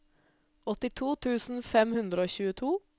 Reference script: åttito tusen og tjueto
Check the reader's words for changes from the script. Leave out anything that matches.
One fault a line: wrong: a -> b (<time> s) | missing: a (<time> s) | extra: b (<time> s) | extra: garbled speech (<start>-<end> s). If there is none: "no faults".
extra: fem hundre (1.7 s)